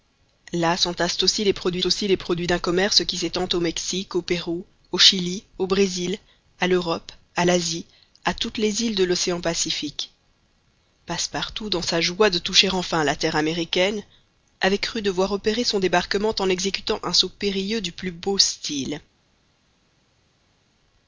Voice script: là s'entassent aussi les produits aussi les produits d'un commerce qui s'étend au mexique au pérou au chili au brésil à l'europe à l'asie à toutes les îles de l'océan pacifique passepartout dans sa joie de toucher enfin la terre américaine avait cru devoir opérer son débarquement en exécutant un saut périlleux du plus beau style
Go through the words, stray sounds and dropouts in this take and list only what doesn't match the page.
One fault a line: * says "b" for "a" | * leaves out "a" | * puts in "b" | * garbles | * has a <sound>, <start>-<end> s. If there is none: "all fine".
all fine